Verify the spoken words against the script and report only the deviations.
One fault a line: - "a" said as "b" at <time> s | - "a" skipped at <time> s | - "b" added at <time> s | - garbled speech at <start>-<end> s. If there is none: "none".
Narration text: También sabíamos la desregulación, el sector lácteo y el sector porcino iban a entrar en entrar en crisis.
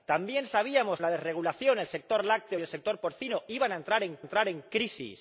none